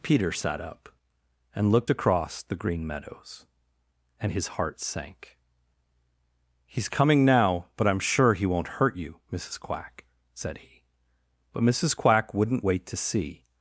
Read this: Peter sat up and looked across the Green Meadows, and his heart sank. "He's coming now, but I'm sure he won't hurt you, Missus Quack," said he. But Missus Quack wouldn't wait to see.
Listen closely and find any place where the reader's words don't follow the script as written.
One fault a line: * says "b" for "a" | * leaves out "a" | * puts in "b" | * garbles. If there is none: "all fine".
all fine